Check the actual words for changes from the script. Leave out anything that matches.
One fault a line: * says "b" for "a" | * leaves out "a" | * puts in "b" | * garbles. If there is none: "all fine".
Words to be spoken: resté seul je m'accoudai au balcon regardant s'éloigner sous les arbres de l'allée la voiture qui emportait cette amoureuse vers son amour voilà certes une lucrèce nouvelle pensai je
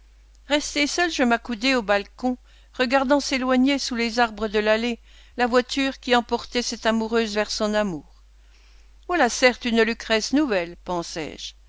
all fine